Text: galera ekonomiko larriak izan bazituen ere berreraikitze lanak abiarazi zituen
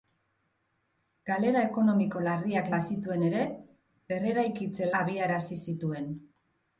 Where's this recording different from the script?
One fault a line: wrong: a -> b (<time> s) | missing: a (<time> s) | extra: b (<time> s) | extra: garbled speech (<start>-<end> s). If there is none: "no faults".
missing: izan (2.7 s)
missing: lanak (4.9 s)